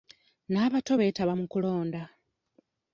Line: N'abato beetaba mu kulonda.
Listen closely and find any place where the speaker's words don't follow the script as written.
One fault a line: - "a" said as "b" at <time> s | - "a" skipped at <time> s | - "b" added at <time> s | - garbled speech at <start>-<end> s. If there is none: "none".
none